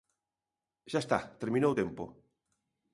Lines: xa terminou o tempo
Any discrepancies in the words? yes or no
yes